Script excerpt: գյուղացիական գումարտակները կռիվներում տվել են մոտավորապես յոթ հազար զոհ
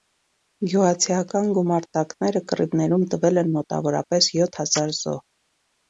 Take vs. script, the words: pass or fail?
pass